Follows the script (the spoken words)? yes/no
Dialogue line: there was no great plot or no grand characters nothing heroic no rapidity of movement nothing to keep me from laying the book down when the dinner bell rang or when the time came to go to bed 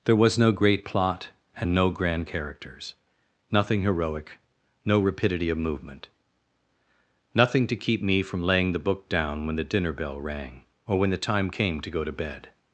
no